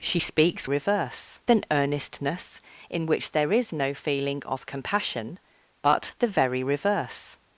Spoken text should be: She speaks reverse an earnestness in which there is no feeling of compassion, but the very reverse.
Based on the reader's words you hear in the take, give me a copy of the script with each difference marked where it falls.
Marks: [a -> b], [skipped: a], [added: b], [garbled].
She speaks reverse an earnestness in which there is no feeling of compassion, but the very reverse.